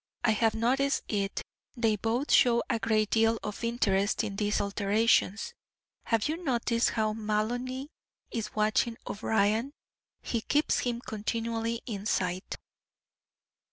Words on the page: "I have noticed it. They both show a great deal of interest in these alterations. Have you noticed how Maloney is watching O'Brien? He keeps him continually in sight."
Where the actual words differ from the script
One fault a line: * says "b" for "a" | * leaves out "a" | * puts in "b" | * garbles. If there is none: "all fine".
all fine